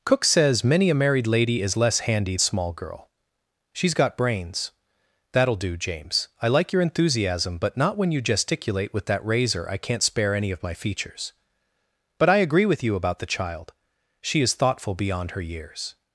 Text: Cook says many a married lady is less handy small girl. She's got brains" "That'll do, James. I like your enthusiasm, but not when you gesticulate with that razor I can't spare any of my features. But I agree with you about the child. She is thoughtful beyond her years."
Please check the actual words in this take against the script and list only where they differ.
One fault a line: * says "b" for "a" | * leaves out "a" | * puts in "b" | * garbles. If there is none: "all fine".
all fine